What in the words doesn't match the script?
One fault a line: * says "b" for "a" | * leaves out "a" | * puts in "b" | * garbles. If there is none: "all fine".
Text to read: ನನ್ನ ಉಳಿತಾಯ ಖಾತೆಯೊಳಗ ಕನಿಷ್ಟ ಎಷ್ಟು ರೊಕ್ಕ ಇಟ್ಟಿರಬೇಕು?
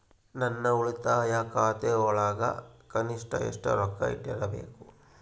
all fine